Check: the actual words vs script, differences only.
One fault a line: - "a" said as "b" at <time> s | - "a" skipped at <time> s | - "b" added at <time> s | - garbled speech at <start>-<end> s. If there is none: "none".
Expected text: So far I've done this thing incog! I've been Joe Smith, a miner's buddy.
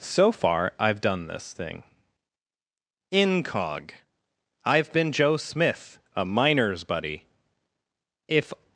- "If" added at 8.3 s